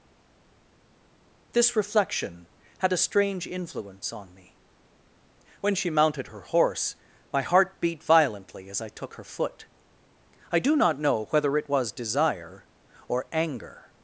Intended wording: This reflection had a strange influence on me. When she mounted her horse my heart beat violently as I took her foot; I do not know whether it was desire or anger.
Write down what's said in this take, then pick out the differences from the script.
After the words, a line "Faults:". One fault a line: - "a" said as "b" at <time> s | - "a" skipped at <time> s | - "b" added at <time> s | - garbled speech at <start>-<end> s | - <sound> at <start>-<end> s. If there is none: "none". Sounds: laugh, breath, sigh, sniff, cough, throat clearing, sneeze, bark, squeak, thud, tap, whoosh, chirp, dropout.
This reflection had a strange influence on me. When she mounted her horse my heart beat violently as I took her foot; I do not know whether it was desire or anger.
Faults:
none